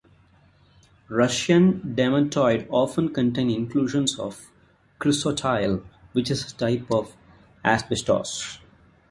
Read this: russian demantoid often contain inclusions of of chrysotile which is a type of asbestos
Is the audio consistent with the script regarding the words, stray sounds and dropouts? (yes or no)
no